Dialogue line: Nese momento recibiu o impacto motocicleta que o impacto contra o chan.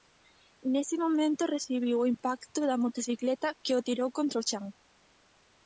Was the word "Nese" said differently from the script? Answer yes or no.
no